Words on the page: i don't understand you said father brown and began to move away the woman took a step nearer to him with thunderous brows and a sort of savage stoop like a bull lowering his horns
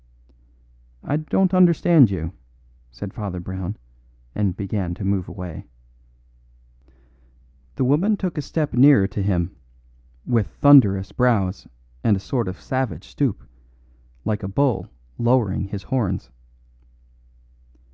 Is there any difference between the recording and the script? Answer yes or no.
no